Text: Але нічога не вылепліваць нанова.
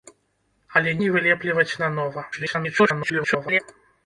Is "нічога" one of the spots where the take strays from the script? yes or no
yes